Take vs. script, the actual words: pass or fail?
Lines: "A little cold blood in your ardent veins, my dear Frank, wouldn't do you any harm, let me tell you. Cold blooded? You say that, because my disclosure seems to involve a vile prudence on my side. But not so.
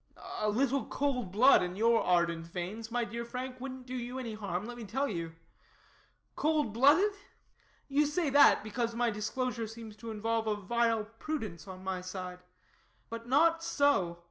pass